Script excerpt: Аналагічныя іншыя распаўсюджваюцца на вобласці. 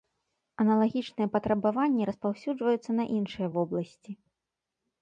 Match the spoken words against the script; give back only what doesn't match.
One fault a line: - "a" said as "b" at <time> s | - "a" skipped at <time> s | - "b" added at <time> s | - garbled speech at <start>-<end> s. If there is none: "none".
- "іншыя" said as "патрабаванні" at 1.4 s
- "іншыя" added at 3.2 s